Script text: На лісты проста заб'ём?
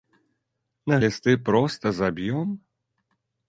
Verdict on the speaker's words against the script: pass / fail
pass